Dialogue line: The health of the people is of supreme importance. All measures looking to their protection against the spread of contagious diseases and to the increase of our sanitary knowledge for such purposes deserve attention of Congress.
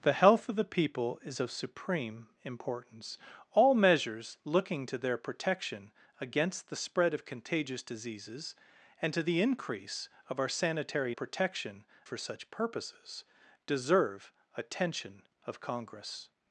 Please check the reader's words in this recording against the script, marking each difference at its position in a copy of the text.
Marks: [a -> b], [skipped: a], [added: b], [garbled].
The health of the people is of supreme importance. All measures looking to their protection against the spread of contagious diseases and to the increase of our sanitary [knowledge -> protection] for such purposes deserve attention of Congress.